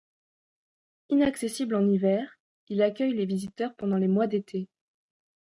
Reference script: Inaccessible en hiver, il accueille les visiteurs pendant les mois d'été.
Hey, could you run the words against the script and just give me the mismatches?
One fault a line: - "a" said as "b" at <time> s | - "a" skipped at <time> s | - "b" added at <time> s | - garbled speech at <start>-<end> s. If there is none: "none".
none